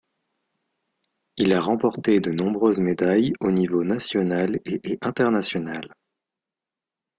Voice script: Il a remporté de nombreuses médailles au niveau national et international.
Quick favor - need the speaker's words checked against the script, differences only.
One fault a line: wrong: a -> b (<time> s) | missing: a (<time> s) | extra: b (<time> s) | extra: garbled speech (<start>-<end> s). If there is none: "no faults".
extra: et (4.8 s)